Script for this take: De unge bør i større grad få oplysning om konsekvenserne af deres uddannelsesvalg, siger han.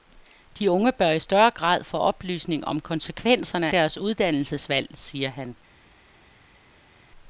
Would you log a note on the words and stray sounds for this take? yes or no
yes